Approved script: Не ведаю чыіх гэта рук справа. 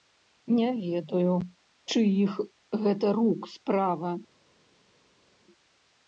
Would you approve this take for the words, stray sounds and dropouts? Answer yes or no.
yes